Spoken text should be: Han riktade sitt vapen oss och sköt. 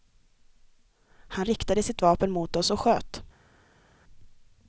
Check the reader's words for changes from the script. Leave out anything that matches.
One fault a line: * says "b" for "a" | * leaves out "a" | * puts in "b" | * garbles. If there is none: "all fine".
* puts in "mot"